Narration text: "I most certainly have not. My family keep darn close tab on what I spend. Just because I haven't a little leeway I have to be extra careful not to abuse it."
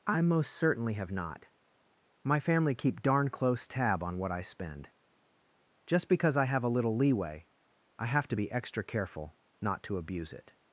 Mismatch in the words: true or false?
true